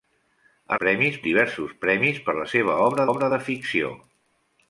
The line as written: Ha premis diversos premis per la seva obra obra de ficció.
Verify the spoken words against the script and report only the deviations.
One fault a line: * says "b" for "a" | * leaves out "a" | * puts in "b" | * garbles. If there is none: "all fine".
all fine